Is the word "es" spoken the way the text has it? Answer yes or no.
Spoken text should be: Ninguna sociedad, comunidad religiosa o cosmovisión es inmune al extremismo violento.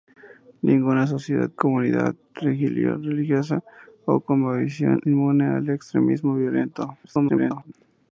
no